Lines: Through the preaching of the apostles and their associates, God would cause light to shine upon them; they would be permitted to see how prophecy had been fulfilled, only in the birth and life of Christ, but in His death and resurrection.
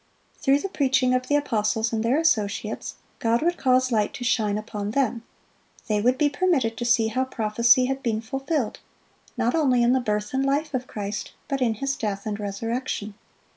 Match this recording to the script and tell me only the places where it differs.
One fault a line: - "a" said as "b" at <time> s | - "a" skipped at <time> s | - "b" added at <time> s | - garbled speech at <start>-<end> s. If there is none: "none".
- "not" added at 9.4 s